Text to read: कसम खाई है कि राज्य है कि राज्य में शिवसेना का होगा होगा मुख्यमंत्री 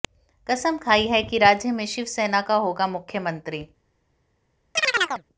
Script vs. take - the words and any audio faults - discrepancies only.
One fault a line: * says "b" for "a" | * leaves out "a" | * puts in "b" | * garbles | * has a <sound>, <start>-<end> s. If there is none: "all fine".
* leaves out "है कि राज्य"
* leaves out "होगा"
* has a chirp, 4.8-5.2 s